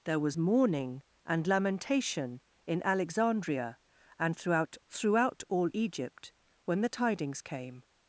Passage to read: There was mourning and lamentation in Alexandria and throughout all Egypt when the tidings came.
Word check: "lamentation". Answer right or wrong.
right